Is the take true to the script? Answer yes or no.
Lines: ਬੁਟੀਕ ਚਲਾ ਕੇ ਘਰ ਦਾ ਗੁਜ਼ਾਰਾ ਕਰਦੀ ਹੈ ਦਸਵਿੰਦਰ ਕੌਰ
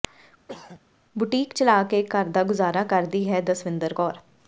yes